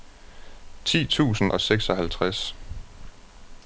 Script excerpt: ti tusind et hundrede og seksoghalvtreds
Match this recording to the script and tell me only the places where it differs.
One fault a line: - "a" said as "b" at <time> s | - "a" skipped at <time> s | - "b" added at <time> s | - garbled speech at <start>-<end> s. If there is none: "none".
- "et hundrede" skipped at 1.5 s